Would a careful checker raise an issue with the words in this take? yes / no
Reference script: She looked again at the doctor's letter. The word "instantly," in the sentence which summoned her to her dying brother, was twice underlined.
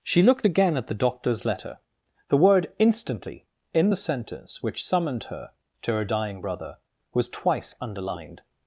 no